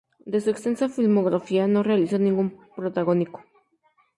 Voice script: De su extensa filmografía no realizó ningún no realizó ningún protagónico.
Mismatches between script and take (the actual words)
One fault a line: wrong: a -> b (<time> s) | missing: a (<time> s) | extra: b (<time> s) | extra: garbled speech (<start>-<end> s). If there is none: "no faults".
missing: no realizó ningún (2.6 s)